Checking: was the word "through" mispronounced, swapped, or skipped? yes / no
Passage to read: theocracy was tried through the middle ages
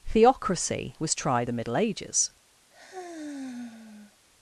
yes